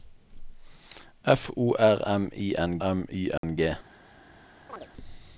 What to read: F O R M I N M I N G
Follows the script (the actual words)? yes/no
yes